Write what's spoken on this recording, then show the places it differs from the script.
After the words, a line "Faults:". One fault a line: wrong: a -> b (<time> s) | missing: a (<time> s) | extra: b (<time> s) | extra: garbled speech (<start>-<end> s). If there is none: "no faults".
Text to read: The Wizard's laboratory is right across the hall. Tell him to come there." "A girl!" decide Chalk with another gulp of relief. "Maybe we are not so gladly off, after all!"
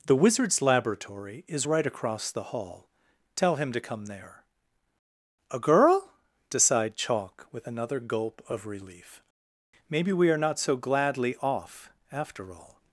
The Wizard's laboratory is right across the hall. Tell him to come there." "A girl!" decide Chalk with another gulp of relief. "Maybe we are not so gladly off, after all!"
Faults:
no faults